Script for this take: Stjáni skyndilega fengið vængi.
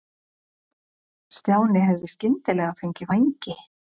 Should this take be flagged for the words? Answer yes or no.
yes